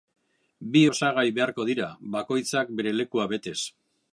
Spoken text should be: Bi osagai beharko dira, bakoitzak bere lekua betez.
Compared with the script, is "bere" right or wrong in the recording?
right